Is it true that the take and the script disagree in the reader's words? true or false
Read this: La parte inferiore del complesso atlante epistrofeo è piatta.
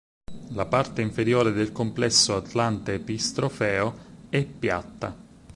false